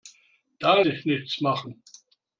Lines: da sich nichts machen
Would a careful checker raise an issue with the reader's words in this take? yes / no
no